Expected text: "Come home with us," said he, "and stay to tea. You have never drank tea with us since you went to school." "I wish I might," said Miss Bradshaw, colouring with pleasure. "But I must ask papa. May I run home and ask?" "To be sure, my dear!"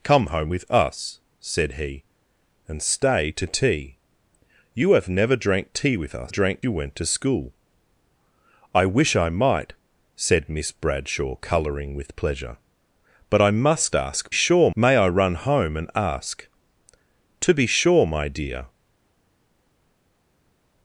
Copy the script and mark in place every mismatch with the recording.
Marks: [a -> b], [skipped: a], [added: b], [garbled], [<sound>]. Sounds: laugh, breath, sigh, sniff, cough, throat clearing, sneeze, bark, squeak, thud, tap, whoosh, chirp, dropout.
"Come home with us," said he, "and stay to tea. You have never drank tea with us [since -> drank] you went to school." "I wish I might," said Miss Bradshaw, colouring with pleasure. "But I must ask [papa. -> sure] May I run home and ask?" "To be sure, my dear!"